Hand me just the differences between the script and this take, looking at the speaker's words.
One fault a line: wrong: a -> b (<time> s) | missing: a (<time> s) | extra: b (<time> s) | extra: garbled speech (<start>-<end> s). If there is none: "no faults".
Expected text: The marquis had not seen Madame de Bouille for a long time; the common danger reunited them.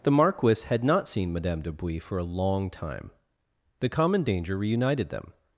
no faults